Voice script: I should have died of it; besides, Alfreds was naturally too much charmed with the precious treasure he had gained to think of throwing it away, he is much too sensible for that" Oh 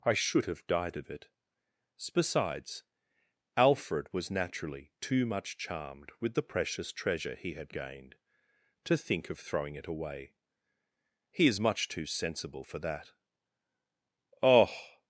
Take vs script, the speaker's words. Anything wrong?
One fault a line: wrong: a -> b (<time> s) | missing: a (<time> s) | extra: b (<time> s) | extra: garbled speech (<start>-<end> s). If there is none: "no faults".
wrong: Alfreds -> Alfred (3.5 s)